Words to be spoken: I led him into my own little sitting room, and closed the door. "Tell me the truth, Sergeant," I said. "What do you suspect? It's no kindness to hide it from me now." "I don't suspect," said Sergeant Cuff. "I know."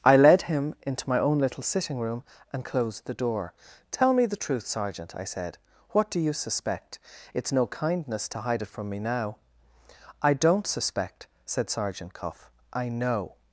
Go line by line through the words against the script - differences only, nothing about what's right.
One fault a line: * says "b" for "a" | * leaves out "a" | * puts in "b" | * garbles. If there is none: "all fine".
all fine